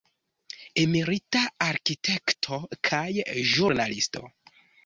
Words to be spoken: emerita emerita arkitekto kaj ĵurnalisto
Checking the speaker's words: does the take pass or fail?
fail